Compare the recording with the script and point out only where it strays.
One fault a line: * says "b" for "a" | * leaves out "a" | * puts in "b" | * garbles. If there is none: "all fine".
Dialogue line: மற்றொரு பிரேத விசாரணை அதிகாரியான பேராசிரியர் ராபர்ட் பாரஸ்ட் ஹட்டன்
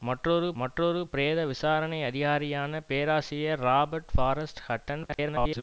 * puts in "மற்றொரு"
* garbles